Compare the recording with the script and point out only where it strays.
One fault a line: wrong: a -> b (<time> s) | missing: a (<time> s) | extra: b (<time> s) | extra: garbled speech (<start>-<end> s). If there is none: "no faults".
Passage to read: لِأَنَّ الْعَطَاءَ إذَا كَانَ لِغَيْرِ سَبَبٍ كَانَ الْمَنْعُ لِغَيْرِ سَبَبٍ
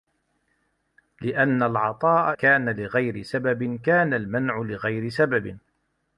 missing: إذَا (2.4 s)